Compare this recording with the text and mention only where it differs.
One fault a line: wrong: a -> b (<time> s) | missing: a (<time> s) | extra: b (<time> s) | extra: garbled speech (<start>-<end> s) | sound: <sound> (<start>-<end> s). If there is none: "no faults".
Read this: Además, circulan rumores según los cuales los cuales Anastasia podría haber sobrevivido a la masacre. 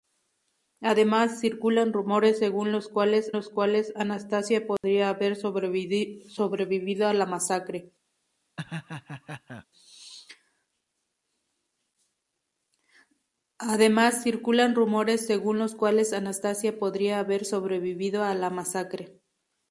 sound: dropout (4.8-4.8 s)
sound: laugh (8.6-9.7 s)